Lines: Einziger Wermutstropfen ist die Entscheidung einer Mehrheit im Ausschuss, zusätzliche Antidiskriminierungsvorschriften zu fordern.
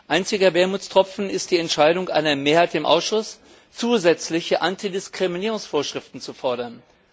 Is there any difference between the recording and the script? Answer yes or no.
no